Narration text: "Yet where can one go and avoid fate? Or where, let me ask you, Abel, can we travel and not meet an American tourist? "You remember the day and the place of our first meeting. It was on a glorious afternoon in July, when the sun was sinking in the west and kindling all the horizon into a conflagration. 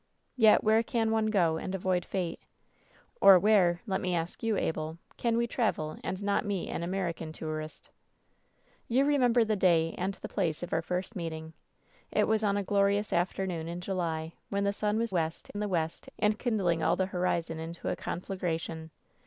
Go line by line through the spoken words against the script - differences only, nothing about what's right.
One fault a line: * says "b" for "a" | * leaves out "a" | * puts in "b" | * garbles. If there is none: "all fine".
* says "west" for "sinking"